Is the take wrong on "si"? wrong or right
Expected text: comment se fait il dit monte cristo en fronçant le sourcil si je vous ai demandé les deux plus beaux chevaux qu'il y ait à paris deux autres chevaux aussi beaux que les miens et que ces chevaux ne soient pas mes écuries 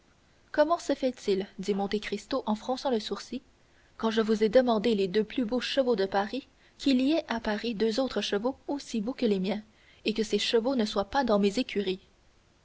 wrong